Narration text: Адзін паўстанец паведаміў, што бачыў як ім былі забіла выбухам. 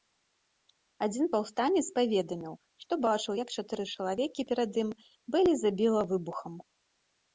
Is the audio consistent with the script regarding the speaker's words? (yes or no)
no